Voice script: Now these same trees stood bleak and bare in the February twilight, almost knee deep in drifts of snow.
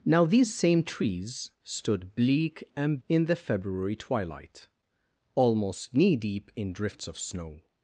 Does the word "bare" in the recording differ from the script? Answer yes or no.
yes